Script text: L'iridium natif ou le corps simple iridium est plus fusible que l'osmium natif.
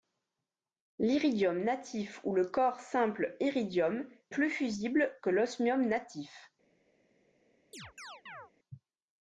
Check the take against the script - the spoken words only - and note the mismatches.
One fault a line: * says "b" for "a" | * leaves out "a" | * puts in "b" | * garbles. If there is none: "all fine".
* leaves out "est"